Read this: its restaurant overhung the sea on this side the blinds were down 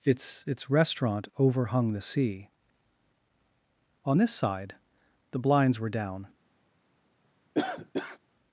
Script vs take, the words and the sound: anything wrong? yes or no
yes